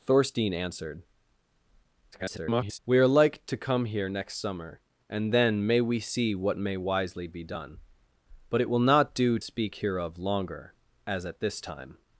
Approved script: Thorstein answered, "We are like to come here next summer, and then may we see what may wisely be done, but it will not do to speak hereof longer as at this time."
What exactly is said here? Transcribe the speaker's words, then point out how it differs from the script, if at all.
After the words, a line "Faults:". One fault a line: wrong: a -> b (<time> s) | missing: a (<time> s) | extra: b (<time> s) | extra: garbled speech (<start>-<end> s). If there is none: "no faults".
Thorstein answered, [garbled] "We are like to come here next summer, and then may we see what may wisely be done, but it will not do speak hereof longer as at this time."
Faults:
extra: garbled speech (2.1-2.8 s)
missing: to (9.4 s)